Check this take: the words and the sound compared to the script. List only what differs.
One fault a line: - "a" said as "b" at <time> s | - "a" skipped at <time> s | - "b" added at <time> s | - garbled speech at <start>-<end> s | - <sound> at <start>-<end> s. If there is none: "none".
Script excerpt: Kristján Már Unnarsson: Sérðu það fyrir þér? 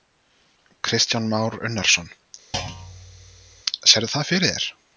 - thud at 2.5-3.6 s